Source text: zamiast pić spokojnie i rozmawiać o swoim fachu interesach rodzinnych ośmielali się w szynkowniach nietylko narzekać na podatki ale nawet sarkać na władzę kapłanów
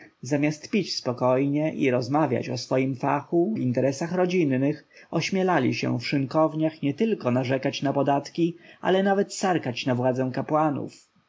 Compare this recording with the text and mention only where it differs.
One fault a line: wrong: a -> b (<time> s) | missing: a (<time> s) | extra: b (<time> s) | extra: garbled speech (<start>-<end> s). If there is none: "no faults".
no faults